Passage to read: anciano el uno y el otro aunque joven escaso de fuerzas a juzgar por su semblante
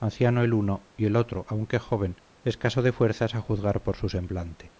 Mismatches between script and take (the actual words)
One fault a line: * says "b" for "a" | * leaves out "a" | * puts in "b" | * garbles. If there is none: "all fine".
all fine